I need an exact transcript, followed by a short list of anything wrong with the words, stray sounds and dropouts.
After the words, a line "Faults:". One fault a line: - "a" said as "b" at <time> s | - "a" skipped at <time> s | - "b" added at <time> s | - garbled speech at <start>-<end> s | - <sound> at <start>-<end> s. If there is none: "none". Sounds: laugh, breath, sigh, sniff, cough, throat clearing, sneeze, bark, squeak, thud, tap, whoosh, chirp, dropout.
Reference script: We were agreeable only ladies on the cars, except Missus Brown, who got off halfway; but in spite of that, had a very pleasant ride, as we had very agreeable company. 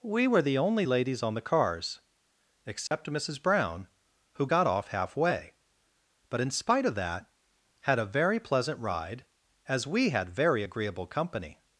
We were the only ladies on the cars, except Missus Brown, who got off halfway; but in spite of that, had a very pleasant ride, as we had very agreeable company.
Faults:
- "agreeable" said as "the" at 0.4 s
- dropout at 2.9-2.9 s